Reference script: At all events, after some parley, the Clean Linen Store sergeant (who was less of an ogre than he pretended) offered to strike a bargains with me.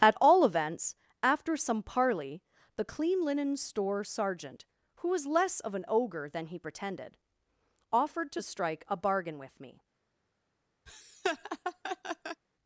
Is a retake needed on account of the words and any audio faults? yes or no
yes